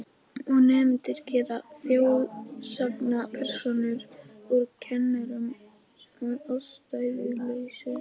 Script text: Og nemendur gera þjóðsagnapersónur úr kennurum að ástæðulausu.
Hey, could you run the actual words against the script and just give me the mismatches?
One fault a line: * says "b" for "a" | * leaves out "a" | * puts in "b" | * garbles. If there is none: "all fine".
all fine